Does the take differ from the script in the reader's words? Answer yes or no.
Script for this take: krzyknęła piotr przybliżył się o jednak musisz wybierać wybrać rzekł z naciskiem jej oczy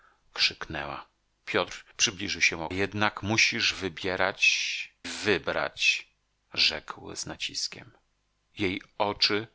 no